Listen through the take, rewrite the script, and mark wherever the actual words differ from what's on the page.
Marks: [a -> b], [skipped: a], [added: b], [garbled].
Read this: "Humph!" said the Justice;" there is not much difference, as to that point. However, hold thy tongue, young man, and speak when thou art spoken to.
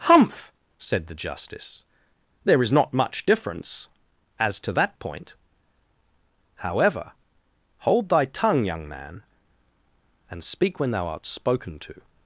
"Humph!" said the Justice;" there is not much difference, as to that point. However, hold thy tongue, young man, and speak when thou art spoken to.